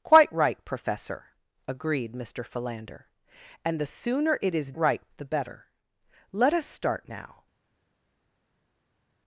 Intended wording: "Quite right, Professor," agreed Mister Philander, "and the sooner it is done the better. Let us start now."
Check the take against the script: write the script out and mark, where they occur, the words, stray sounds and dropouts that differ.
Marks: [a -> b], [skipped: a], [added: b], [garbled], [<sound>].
"Quite right, Professor," agreed Mister Philander, "and the sooner it is [done -> right] the better. Let us start now."